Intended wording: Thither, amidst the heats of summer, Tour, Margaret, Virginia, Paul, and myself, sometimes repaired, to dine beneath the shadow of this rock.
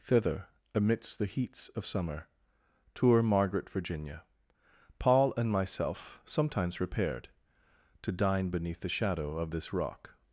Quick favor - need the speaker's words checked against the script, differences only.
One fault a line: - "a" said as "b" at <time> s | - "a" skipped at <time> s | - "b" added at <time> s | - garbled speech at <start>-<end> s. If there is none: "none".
none